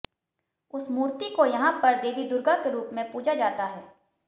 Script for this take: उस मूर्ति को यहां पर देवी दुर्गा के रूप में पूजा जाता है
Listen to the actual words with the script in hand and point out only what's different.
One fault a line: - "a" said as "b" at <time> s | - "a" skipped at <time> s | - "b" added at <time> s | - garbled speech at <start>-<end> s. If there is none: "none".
none